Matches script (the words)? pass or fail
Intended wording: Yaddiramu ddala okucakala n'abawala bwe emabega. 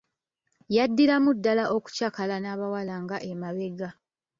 fail